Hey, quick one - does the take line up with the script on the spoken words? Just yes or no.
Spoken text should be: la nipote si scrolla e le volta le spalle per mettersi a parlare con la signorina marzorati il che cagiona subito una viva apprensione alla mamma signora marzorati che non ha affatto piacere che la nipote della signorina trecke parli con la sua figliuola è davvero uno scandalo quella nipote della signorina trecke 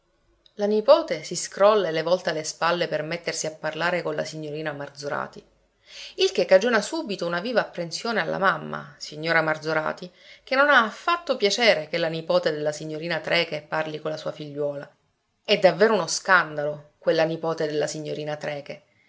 yes